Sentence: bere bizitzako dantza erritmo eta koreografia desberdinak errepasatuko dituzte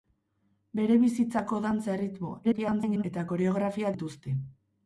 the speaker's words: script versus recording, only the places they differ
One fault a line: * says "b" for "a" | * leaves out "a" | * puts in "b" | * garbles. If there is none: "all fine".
* garbles
* leaves out "desberdinak errepasatuko"